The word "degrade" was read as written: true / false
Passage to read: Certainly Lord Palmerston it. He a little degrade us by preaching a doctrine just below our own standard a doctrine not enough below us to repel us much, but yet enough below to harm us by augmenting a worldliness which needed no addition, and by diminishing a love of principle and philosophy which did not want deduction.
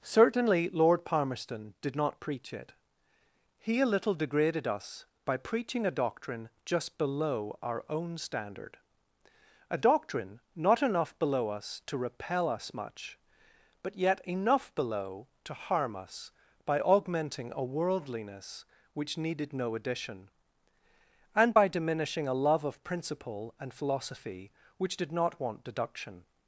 false